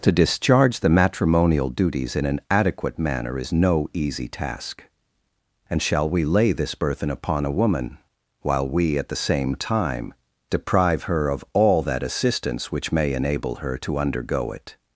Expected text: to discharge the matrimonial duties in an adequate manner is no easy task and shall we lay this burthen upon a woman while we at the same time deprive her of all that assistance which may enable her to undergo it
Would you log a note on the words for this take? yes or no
no